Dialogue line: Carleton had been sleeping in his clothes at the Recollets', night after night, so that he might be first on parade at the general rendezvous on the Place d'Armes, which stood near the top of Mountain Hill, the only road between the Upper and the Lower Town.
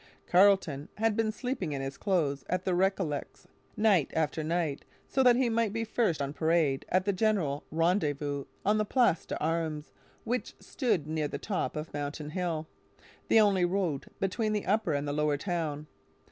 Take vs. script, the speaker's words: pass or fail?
pass